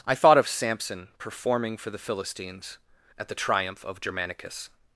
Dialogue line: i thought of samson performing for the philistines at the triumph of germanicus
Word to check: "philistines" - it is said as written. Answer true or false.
true